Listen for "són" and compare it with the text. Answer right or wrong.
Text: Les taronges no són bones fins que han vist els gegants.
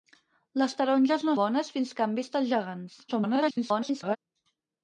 wrong